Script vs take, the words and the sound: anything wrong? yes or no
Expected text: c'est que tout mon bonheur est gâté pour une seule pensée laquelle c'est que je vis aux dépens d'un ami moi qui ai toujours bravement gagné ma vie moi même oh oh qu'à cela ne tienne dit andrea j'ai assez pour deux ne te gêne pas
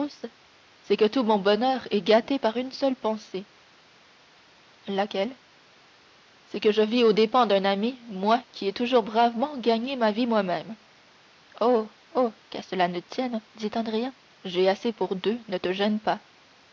yes